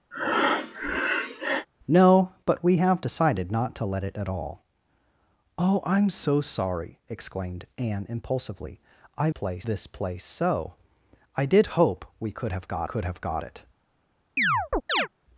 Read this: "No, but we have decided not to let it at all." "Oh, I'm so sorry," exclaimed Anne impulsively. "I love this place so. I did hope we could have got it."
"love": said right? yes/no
no